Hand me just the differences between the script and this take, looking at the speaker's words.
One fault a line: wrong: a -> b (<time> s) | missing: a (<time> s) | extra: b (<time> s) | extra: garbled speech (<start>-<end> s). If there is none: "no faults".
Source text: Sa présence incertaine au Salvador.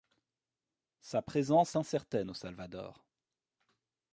no faults